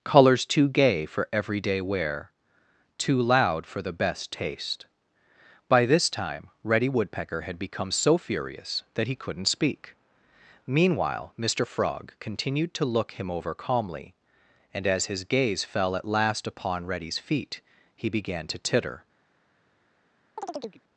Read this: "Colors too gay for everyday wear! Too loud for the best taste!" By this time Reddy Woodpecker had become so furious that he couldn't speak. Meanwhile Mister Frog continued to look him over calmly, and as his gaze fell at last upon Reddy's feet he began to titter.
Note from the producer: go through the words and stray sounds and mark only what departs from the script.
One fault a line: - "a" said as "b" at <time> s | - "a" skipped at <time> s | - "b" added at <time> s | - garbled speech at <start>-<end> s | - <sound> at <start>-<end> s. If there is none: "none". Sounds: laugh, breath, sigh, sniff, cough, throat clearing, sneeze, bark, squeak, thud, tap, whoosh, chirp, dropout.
- chirp at 20.4-20.8 s